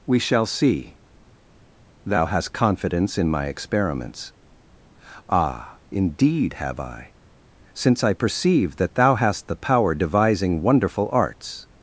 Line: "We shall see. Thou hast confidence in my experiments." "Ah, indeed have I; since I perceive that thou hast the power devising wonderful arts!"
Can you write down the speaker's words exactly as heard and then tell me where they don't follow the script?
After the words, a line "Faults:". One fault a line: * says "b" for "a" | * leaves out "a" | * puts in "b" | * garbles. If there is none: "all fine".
"We shall see. Thou hast confidence in my experiments." "Ah, indeed have I; since I perceive that thou hast the power devising wonderful arts!"
Faults:
all fine